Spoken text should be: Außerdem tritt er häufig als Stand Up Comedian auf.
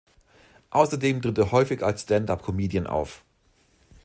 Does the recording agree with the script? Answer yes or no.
yes